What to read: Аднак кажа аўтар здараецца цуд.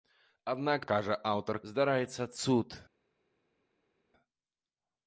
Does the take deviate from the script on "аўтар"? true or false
false